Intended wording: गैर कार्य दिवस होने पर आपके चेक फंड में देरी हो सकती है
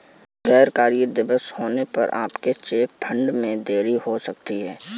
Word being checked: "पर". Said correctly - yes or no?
yes